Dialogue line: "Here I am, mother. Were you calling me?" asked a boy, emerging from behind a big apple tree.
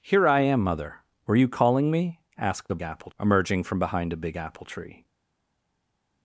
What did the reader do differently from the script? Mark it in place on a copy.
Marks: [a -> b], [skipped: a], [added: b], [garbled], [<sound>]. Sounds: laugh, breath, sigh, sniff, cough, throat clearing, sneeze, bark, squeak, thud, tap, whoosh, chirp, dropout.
"Here I am, mother. Were you calling me?" asked a [boy, -> apple] emerging from behind a big apple tree.